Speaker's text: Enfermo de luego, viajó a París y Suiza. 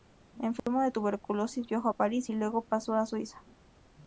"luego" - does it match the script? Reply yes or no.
no